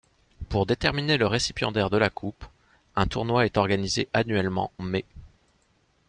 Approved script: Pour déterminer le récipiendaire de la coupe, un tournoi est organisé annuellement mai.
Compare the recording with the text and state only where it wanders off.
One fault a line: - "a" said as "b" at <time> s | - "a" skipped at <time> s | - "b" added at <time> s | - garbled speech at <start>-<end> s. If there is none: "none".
none